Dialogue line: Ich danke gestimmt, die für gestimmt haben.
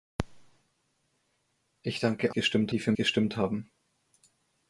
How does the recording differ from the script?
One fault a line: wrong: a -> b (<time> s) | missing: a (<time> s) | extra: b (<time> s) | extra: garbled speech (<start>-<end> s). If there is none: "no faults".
no faults